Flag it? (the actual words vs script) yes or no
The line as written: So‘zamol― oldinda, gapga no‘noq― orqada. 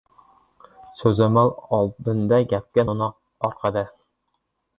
no